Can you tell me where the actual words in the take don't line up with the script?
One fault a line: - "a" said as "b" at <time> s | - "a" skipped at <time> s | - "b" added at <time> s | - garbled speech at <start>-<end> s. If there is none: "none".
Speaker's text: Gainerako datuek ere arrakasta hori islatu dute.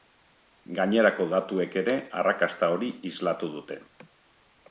none